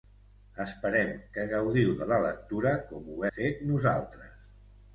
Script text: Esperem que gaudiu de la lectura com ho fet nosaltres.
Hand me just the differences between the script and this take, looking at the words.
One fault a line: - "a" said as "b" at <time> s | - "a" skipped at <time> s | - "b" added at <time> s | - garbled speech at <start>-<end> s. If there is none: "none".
none